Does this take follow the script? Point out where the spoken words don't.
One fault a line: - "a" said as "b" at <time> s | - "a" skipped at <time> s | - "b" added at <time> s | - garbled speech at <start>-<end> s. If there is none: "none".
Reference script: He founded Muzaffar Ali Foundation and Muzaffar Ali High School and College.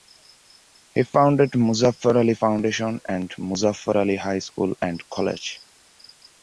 none